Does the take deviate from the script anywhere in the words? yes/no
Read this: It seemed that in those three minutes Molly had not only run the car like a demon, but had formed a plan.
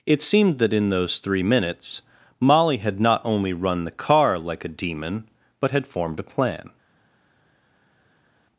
no